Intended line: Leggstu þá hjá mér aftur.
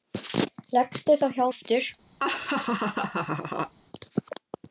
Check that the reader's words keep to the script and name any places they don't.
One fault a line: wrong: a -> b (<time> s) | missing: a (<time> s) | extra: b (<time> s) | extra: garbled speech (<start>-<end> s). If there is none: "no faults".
missing: mér (1.4 s)